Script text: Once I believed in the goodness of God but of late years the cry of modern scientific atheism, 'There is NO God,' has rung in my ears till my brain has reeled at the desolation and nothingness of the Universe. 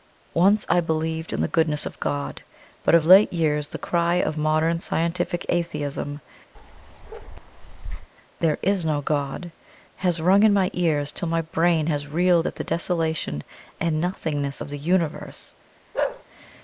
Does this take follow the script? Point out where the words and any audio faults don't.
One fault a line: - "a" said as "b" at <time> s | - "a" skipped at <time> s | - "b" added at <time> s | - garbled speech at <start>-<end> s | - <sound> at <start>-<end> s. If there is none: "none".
- bark at 6.5-8.1 s
- bark at 15.9-16.2 s